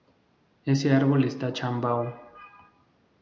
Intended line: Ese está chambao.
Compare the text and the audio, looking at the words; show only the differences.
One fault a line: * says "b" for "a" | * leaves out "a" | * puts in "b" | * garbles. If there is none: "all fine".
* puts in "árbol"